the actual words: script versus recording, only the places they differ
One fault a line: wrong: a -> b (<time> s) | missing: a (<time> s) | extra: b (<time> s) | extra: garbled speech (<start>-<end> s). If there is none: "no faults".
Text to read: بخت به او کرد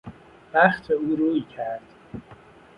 extra: روی (1.1 s)